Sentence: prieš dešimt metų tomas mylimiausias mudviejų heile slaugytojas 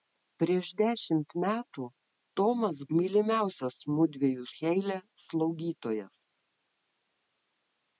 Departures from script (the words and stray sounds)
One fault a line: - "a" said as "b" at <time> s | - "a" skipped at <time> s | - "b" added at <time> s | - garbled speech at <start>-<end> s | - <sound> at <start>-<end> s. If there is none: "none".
none